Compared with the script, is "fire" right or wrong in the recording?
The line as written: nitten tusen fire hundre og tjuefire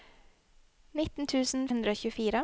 wrong